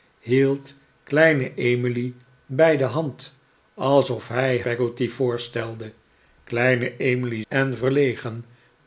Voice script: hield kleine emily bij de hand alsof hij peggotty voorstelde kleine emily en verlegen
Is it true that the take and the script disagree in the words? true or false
false